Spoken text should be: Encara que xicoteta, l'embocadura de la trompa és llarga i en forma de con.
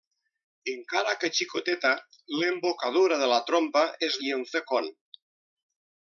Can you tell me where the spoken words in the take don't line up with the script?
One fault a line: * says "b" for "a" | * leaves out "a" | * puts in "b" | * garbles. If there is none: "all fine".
* leaves out "llarga"
* leaves out "forma"